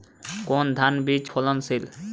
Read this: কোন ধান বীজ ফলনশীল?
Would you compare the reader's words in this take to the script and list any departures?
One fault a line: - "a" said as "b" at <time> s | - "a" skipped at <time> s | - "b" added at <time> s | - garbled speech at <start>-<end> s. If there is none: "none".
none